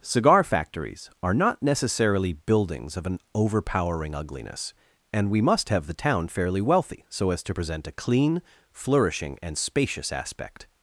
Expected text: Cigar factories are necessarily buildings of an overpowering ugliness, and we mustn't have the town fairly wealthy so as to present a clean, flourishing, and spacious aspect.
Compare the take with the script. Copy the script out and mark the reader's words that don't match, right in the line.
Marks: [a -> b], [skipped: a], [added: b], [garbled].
Cigar factories are [added: not] necessarily buildings of an overpowering ugliness, and we [mustn't -> must] have the town fairly wealthy so as to present a clean, flourishing, and spacious aspect.